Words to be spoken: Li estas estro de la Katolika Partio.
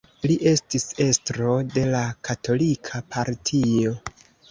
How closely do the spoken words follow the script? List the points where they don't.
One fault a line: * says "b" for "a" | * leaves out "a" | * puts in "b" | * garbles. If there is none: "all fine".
* says "estis" for "estas"